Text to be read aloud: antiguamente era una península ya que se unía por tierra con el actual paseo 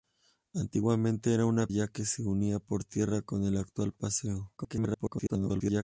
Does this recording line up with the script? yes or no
no